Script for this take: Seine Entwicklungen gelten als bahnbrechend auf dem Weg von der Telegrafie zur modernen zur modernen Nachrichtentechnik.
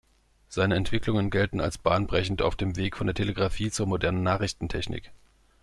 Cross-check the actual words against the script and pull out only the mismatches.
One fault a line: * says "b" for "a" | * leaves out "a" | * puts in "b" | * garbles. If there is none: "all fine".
* leaves out "zur modernen"